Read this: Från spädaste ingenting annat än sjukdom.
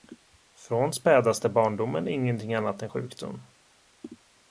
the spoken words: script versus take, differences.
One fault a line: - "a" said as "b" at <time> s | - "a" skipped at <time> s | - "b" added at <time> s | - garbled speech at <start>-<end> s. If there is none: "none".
- "barndomen" added at 1.5 s